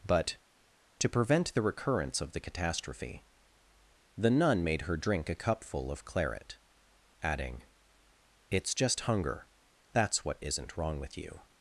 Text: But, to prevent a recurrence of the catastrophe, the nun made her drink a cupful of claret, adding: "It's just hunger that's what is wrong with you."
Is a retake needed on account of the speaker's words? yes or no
yes